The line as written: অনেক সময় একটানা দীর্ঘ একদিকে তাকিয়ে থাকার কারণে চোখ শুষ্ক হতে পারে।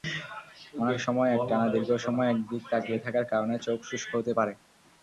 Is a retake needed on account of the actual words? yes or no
yes